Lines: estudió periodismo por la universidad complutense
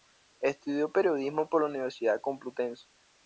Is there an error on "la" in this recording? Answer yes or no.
no